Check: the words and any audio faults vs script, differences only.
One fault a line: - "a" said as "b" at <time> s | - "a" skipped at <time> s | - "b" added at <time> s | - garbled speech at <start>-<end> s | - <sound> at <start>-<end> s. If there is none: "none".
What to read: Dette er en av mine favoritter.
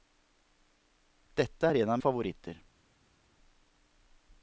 - "mine" skipped at 2.0 s